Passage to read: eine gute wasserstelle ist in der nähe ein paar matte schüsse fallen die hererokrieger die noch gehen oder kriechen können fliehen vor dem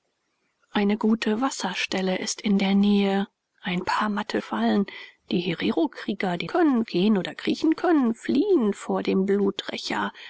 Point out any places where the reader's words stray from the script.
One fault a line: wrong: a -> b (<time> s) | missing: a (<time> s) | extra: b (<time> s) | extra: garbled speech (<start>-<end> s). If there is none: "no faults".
missing: schüsse (4.4 s)
wrong: noch -> können (6.5 s)